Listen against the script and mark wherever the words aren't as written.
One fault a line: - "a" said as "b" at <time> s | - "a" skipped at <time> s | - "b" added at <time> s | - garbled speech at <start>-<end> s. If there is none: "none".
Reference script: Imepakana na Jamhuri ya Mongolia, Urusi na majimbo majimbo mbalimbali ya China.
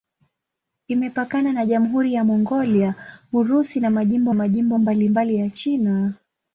none